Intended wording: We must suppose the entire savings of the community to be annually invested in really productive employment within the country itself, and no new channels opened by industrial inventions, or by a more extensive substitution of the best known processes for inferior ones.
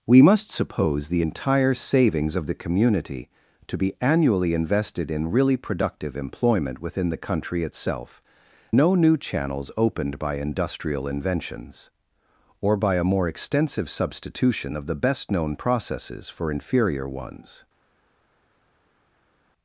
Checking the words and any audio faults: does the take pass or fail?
fail